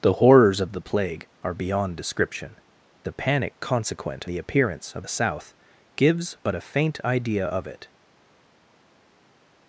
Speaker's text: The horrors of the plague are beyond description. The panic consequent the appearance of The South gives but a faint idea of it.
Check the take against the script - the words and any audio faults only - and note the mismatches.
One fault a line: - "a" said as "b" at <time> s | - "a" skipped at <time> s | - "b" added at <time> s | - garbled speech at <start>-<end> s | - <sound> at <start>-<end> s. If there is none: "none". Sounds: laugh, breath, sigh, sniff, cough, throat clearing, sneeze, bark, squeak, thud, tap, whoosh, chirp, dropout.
none